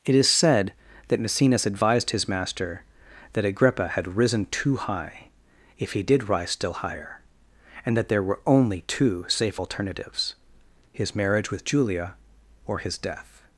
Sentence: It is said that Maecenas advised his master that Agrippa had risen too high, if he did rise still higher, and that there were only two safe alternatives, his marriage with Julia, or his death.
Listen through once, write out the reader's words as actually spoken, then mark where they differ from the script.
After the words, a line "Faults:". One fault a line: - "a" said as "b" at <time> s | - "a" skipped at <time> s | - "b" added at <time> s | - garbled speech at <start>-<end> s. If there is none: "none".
It is said that Maecenas advised his master that Agrippa had risen too high, if he did rise still higher, and that there were only two safe alternatives, his marriage with Julia, or his death.
Faults:
none